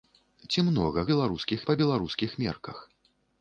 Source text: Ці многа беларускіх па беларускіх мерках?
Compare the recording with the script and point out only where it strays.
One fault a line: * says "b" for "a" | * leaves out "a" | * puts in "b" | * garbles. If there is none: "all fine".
all fine